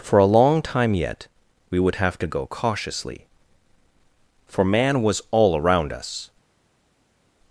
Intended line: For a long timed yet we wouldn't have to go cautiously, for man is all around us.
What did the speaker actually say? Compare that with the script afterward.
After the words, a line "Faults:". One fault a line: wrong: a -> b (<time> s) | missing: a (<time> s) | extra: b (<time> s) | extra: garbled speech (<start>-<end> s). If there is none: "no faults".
For a long time yet we would have to go cautiously, for man was all around us.
Faults:
wrong: timed -> time (0.6 s)
wrong: wouldn't -> would (1.8 s)
wrong: is -> was (5.0 s)